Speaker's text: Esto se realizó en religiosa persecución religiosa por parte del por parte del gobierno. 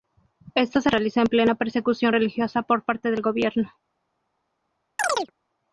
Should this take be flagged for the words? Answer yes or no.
yes